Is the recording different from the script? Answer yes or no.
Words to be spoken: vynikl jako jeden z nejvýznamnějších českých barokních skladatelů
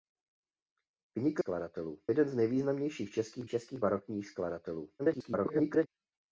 yes